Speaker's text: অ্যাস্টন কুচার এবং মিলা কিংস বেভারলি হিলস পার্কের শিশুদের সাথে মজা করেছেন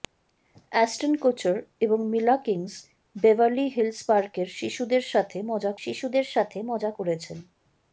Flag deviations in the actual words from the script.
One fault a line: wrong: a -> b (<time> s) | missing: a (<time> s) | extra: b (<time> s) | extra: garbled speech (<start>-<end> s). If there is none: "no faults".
extra: শিশুদের সাথে মজা (5.8 s)